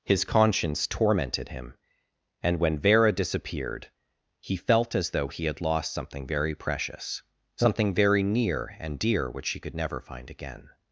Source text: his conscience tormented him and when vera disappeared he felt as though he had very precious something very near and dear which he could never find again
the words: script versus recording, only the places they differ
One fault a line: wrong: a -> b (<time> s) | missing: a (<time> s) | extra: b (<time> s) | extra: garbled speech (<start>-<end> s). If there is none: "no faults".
extra: lost something (5.6 s)